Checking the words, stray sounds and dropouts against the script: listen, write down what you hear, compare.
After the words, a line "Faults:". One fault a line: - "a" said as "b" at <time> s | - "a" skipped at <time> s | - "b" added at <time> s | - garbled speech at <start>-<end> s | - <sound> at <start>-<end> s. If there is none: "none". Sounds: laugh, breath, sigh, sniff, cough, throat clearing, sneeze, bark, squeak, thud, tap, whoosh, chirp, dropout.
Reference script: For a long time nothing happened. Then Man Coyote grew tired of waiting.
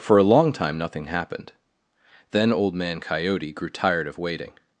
For a long time nothing happened. Then Old Man Coyote grew tired of waiting.
Faults:
- "Old" added at 2.5 s